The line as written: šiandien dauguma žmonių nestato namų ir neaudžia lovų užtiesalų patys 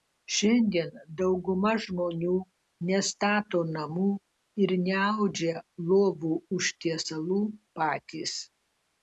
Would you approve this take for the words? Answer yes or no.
yes